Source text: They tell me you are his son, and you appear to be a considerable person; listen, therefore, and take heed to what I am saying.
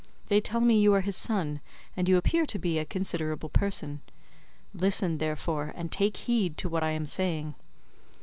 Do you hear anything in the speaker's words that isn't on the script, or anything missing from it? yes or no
no